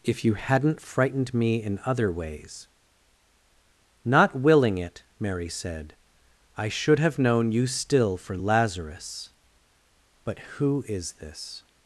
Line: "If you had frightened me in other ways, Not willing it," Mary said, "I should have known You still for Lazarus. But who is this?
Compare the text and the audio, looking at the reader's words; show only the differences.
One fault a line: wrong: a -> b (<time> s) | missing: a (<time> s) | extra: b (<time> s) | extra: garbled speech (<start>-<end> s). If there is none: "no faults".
wrong: had -> hadn't (0.3 s)